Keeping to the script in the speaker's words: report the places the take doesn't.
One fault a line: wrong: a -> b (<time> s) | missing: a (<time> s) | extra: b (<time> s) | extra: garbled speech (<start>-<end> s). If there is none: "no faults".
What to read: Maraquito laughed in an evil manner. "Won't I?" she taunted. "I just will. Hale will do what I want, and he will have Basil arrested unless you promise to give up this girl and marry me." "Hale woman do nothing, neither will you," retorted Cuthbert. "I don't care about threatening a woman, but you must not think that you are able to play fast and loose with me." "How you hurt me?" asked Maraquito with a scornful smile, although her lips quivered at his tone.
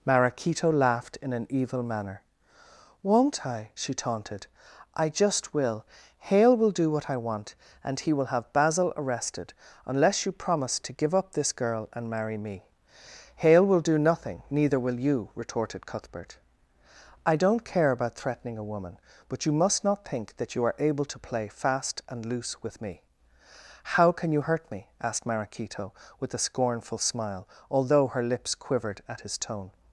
wrong: woman -> will (13.7 s)
extra: can (24.1 s)